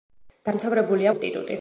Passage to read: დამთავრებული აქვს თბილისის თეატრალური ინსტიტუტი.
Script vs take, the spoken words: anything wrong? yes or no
yes